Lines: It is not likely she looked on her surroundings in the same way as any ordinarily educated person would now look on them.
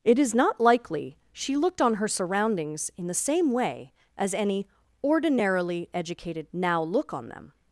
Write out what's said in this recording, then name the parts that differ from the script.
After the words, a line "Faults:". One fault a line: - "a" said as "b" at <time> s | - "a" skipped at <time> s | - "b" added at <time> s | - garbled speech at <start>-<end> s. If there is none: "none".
It is not likely she looked on her surroundings in the same way as any ordinarily educated now look on them.
Faults:
- "person would" skipped at 6.5 s